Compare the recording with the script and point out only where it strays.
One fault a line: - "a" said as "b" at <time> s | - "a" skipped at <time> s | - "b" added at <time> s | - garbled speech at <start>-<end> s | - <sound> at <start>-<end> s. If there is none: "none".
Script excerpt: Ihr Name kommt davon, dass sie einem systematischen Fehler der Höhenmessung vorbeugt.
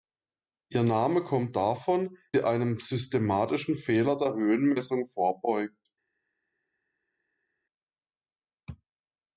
- "dass" skipped at 2.2 s